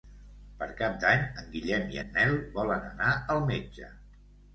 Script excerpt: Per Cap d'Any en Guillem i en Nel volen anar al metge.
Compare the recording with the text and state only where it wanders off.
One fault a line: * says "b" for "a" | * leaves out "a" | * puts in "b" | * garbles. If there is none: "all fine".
all fine